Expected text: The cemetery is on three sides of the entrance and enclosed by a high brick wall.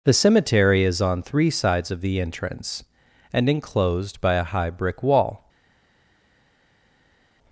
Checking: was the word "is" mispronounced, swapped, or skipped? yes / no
no